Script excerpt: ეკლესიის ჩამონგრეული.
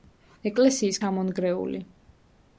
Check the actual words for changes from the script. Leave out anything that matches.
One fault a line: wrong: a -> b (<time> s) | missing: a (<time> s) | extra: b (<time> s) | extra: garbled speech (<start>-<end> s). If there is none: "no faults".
no faults